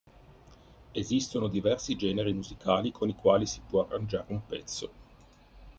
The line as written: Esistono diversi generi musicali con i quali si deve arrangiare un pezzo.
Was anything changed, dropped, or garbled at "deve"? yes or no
yes